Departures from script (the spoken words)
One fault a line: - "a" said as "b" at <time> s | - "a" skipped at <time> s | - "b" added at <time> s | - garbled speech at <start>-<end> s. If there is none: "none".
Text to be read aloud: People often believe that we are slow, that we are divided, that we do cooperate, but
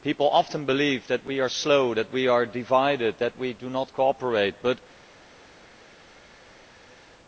- "not" added at 3.7 s